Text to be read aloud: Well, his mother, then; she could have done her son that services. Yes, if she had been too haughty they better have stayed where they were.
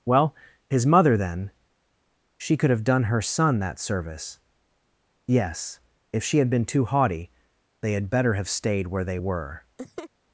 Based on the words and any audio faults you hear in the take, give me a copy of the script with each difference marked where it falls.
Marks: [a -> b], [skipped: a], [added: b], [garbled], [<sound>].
Well, his mother, then; she could have done her son that [services. -> service] Yes, if she had been too haughty they [added: had] better have stayed where they were. [laugh]